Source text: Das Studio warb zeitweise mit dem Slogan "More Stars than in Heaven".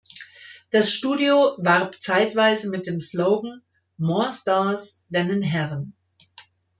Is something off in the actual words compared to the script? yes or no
no